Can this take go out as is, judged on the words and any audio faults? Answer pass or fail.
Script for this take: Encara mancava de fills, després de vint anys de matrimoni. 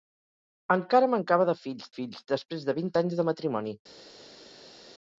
fail